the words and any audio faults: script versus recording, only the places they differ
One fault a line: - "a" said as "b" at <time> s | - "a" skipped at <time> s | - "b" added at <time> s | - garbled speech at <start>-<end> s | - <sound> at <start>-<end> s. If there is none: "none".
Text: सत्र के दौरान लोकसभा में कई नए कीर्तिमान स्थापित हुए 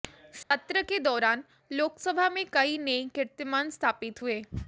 - dropout at 0.4-0.5 s